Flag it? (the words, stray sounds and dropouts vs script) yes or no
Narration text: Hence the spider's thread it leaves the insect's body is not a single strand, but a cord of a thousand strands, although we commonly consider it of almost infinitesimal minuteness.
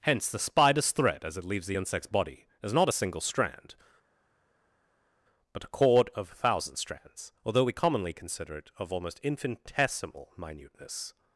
yes